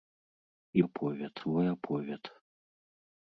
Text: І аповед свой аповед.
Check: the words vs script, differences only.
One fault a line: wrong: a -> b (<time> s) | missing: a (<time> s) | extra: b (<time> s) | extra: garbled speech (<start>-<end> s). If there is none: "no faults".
no faults